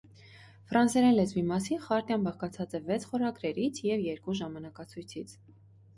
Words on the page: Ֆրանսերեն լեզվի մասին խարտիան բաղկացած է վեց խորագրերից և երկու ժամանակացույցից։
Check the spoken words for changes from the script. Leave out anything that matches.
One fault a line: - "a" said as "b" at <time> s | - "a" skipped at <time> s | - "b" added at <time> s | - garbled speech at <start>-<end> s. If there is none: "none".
none